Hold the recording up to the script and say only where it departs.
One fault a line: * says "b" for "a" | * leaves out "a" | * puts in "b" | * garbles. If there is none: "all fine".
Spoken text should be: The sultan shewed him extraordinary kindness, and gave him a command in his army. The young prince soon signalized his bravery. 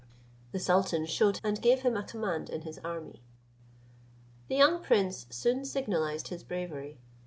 * leaves out "him extraordinary kindness"